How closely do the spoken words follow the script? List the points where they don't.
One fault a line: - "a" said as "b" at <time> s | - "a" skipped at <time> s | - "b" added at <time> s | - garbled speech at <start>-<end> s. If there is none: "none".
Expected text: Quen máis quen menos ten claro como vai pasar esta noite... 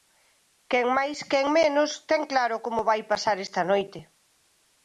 none